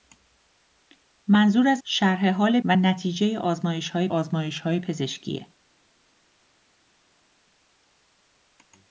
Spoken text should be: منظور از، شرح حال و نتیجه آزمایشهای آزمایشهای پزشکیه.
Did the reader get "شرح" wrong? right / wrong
right